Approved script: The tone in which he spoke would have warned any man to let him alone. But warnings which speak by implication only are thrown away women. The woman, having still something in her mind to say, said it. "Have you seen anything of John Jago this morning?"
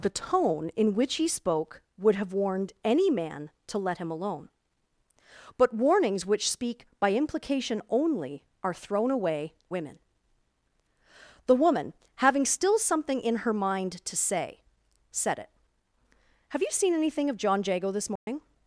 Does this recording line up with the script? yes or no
yes